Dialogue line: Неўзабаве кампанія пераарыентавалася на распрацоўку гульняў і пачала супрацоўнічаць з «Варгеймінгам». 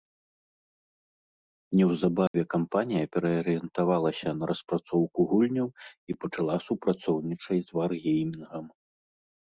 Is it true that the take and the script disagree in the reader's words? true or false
false